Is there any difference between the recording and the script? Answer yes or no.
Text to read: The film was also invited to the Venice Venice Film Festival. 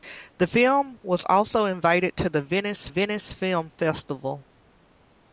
no